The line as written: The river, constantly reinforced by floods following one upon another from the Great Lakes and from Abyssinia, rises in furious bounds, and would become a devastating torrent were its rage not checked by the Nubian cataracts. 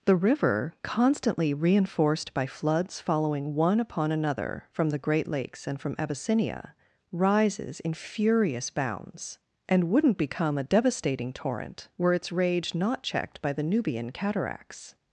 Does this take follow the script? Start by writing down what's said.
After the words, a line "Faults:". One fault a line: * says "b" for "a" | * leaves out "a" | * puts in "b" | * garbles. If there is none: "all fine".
The river, constantly reinforced by floods following one upon another from the Great Lakes and from Abyssinia, rises in furious bounds, and wouldn't become a devastating torrent were its rage not checked by the Nubian cataracts.
Faults:
* says "wouldn't" for "would"